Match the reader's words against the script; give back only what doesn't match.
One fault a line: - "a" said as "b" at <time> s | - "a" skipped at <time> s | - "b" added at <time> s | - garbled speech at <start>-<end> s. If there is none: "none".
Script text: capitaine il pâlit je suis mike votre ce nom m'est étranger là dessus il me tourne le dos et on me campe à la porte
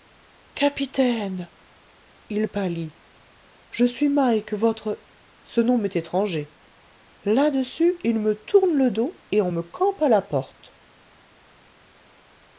none